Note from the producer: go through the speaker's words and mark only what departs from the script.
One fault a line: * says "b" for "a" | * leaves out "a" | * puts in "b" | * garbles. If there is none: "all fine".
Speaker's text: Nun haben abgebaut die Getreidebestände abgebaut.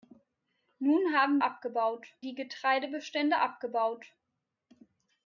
all fine